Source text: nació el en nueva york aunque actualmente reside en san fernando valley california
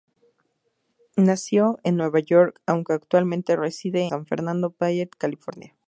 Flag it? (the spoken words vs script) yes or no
yes